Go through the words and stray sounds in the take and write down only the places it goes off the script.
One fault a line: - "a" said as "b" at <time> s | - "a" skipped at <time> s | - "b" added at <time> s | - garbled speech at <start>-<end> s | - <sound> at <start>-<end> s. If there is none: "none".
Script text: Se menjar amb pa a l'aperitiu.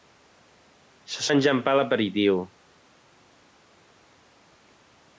none